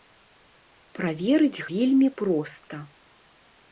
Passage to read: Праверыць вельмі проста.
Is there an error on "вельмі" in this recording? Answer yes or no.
no